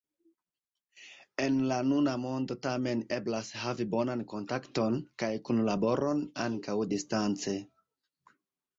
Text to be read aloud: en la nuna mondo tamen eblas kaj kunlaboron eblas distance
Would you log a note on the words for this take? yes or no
yes